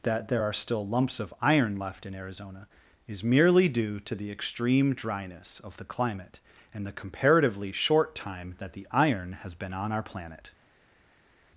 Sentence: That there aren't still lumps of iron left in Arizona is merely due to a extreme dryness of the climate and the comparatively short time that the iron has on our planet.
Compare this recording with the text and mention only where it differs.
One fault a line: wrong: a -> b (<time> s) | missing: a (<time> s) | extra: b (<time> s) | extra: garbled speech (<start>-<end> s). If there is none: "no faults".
wrong: aren't -> are (0.4 s)
wrong: a -> the (4.1 s)
extra: been (9.5 s)